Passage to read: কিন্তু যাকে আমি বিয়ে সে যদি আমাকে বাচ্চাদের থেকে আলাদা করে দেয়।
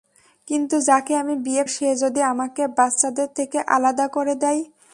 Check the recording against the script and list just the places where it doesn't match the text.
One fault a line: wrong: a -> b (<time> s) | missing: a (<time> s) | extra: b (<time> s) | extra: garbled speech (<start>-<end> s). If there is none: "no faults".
no faults